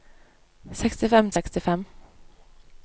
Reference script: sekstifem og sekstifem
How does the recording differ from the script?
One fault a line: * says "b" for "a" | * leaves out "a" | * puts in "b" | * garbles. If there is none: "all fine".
all fine